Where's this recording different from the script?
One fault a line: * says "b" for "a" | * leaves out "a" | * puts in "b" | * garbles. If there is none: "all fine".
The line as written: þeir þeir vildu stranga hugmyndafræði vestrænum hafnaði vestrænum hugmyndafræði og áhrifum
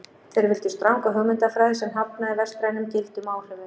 * leaves out "þeir"
* says "sem" for "vestrænum"
* says "gildum" for "hugmyndafræði"